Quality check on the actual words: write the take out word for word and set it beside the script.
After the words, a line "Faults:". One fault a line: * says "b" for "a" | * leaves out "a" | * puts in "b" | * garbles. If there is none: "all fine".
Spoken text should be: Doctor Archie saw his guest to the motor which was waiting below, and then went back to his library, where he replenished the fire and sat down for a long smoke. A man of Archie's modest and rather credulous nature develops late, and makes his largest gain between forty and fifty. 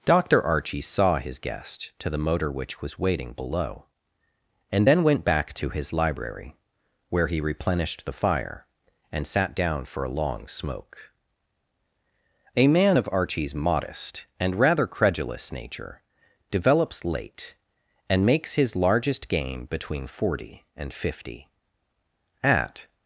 Doctor Archie saw his guest to the motor which was waiting below, and then went back to his library, where he replenished the fire and sat down for a long smoke. A man of Archie's modest and rather credulous nature develops late, and makes his largest gain between forty and fifty. At
Faults:
* puts in "At"